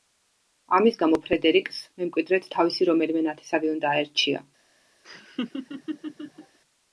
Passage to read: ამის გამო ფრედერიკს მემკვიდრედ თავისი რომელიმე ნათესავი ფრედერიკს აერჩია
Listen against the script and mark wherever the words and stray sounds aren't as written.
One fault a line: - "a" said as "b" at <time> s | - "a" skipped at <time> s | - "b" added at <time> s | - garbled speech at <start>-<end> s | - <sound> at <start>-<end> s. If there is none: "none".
- "ფრედერიკს" said as "უნდა" at 3.8 s
- laugh at 5.0-6.6 s